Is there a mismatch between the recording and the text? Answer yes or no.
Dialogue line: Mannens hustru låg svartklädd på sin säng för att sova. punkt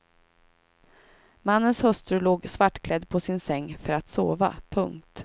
no